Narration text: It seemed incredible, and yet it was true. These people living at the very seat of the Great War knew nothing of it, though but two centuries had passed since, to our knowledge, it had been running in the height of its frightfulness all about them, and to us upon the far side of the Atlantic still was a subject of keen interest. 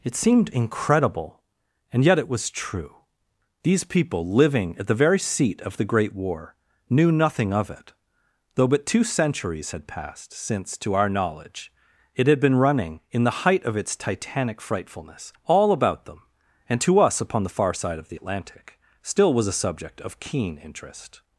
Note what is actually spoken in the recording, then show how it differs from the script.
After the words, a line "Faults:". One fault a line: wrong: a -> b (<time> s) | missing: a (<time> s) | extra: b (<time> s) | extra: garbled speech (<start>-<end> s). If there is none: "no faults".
It seemed incredible, and yet it was true. These people living at the very seat of the Great War knew nothing of it, though but two centuries had passed since, to our knowledge, it had been running in the height of its titanic frightfulness all about them, and to us upon the far side of the Atlantic still was a subject of keen interest.
Faults:
extra: titanic (13.9 s)